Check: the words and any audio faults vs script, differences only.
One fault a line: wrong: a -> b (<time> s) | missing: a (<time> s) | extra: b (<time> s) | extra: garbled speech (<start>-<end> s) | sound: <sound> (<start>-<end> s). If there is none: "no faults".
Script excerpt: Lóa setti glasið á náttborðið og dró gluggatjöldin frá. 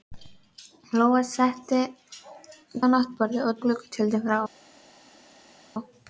missing: glasið (1.8 s)
missing: dró (3.6 s)